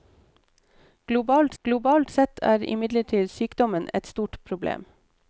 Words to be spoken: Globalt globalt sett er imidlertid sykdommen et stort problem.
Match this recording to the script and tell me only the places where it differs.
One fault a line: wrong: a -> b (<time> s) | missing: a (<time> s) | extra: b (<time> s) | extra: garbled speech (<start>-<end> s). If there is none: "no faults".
no faults